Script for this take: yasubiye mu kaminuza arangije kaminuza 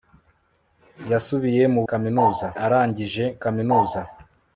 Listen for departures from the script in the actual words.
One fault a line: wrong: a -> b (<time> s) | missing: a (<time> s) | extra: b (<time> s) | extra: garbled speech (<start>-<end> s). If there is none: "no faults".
no faults